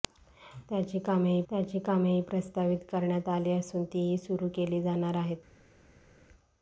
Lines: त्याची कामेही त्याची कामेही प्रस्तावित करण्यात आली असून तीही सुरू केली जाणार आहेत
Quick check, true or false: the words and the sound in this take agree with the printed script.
true